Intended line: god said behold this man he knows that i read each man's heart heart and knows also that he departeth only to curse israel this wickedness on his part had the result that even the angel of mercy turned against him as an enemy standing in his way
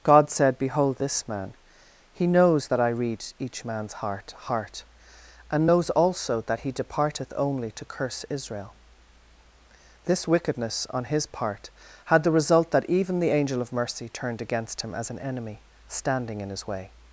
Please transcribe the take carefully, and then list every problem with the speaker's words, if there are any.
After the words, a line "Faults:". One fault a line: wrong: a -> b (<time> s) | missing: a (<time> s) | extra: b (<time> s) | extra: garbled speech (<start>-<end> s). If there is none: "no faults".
god said behold this man he knows that i read each man's heart heart and knows also that he departeth only to curse israel this wickedness on his part had the result that even the angel of mercy turned against him as an enemy standing in his way
Faults:
no faults